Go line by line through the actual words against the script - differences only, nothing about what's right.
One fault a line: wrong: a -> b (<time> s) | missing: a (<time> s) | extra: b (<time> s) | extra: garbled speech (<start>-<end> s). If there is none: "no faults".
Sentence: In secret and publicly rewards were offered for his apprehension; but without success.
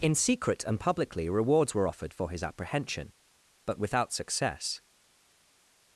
no faults